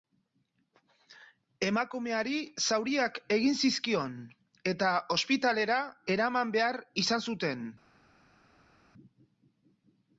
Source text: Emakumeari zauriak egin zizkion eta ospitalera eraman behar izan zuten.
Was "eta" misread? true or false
false